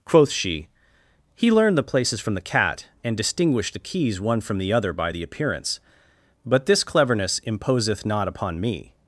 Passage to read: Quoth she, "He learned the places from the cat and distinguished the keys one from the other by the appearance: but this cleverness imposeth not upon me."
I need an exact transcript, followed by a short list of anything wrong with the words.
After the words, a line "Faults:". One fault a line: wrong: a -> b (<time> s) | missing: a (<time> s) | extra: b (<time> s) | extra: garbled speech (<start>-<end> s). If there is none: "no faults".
Quoth she, "He learned the places from the cat and distinguished the keys one from the other by the appearance: but this cleverness imposeth not upon me."
Faults:
no faults